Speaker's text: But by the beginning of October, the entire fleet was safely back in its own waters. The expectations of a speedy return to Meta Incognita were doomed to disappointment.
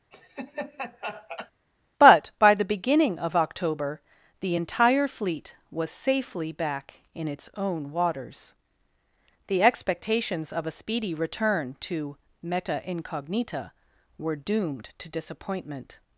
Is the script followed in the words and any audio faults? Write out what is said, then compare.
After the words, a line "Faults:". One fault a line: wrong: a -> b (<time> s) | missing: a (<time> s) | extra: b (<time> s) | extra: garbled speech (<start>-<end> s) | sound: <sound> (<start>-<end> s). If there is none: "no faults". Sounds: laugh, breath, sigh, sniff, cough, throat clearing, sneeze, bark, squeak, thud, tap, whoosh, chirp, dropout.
But by the beginning of October, the entire fleet was safely back in its own waters. The expectations of a speedy return to Meta Incognita were doomed to disappointment.
Faults:
sound: laugh (0.1-1.5 s)